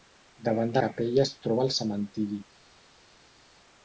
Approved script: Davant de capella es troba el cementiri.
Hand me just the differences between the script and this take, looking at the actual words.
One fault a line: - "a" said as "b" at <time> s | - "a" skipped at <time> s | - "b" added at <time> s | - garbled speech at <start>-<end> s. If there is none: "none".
none